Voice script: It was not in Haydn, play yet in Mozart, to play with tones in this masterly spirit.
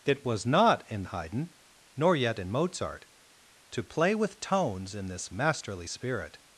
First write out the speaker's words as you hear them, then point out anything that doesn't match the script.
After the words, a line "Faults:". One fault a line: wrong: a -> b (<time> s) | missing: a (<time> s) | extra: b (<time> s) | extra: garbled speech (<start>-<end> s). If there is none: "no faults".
It was not in Haydn, nor yet in Mozart, to play with tones in this masterly spirit.
Faults:
wrong: play -> nor (1.9 s)